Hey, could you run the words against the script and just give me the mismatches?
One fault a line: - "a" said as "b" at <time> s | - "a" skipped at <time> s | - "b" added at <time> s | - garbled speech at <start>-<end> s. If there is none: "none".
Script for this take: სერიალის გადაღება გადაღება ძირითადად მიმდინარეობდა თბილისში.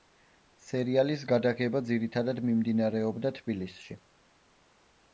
- "გადაღება" skipped at 1.8 s